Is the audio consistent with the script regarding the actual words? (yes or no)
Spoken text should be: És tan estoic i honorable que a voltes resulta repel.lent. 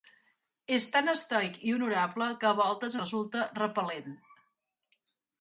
yes